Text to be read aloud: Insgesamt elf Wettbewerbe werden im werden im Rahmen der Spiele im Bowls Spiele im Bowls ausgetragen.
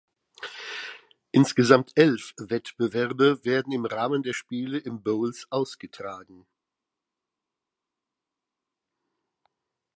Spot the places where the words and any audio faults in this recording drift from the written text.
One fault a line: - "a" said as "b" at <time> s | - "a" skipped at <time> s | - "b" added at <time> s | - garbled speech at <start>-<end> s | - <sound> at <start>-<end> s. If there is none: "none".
- "werden im" skipped at 3.9 s
- "Spiele im Bowls" skipped at 5.5 s